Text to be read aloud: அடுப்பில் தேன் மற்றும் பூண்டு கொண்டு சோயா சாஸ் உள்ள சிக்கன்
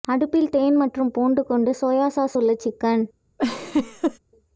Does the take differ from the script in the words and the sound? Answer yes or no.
yes